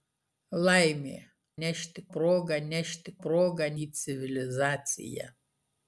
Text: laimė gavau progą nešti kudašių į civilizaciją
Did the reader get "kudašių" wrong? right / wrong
wrong